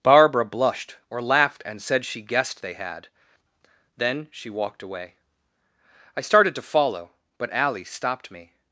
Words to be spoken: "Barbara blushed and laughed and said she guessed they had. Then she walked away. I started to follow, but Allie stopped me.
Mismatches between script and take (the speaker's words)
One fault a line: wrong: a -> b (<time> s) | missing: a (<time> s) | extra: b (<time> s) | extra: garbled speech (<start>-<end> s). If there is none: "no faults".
wrong: and -> or (1.1 s)